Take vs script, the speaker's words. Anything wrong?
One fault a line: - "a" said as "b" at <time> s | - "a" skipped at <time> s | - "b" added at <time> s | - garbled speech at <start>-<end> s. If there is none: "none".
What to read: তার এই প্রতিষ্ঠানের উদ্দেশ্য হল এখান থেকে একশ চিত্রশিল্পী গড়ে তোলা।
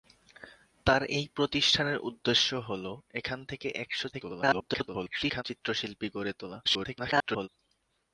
- garbled speech at 4.1-5.4 s
- garbled speech at 6.6-7.5 s